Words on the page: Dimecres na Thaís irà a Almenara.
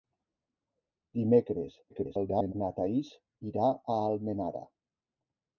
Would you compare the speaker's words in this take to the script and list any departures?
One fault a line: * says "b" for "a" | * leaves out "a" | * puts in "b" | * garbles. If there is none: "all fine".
* garbles